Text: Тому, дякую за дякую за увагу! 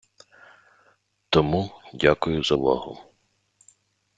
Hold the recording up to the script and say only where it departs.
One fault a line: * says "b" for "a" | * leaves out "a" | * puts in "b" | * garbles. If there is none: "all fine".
* leaves out "дякую за"